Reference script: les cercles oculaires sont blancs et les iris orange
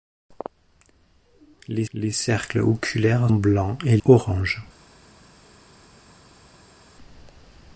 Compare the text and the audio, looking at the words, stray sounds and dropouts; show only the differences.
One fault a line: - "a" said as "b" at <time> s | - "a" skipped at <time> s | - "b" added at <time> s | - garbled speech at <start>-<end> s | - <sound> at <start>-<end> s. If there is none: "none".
- "les" added at 1.9 s
- "sont" skipped at 3.3 s
- "les iris" skipped at 4.0 s